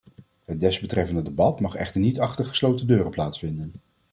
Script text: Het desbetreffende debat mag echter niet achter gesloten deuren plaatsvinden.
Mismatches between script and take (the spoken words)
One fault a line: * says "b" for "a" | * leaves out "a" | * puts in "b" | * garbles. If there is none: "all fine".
all fine